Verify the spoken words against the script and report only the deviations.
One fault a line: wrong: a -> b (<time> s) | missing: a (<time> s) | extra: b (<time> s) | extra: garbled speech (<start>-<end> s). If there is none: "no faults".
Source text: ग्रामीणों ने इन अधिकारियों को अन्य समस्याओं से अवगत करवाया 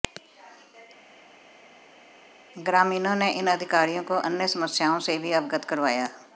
extra: भी (5.2 s)